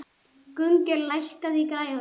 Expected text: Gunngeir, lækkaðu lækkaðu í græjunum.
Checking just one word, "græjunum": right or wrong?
right